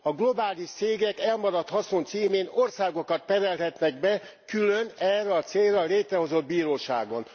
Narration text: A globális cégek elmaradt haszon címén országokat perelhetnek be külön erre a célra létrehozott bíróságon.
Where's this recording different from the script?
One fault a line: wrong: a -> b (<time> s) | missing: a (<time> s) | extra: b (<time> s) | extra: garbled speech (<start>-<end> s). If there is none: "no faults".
no faults